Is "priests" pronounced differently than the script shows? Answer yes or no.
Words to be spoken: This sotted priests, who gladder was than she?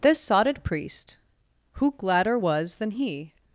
yes